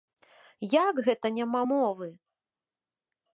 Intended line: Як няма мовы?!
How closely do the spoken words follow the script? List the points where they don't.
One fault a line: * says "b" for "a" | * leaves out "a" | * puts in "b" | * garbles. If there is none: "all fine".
* puts in "гэта"